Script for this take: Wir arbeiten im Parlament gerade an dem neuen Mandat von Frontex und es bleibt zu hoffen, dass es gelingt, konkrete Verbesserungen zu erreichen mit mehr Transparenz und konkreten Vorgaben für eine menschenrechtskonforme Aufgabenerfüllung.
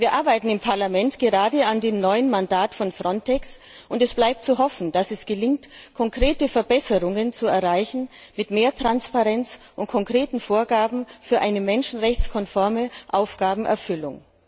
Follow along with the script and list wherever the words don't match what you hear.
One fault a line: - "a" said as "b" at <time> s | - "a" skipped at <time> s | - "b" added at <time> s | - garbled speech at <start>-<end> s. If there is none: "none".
none